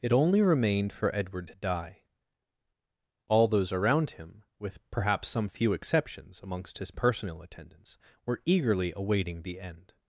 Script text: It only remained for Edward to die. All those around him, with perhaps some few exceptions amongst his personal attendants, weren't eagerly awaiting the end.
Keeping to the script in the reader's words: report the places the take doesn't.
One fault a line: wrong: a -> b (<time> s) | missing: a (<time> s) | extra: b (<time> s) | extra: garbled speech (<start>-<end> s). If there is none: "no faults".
wrong: weren't -> were (8.3 s)